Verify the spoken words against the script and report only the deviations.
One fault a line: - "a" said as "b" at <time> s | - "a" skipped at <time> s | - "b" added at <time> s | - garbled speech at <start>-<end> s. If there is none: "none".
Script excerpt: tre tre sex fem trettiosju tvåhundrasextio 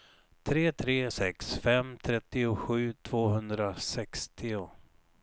none